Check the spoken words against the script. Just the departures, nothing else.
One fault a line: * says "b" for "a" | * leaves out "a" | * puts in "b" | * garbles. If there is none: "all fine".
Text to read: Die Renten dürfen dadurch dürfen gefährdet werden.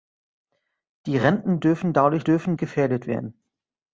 all fine